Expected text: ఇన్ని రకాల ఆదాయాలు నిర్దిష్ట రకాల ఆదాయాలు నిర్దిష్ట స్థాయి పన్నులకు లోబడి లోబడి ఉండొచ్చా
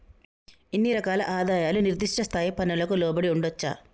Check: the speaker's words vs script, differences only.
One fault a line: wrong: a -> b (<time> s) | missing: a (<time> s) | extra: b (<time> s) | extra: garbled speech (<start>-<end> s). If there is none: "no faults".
missing: రకాల ఆదాయాలు నిర్దిష్ట (2.2 s)
missing: లోబడి (3.3 s)